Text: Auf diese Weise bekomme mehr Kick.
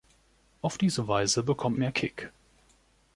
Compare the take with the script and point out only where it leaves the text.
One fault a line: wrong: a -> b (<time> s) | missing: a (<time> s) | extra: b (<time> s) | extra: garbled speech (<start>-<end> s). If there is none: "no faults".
no faults